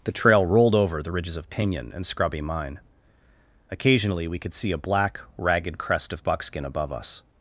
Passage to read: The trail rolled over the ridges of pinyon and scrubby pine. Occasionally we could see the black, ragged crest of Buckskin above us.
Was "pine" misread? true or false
true